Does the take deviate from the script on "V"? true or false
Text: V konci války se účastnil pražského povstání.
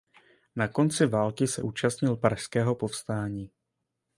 true